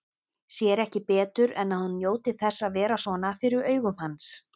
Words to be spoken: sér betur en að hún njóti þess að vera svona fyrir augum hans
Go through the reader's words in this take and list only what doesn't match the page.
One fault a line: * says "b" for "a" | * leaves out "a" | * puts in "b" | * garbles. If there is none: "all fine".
* puts in "ekki"